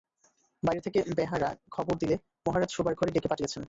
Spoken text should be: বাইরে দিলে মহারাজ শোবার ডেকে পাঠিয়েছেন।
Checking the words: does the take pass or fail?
fail